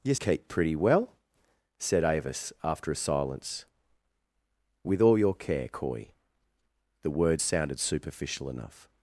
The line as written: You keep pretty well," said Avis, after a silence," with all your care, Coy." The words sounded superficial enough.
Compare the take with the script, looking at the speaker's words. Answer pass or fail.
pass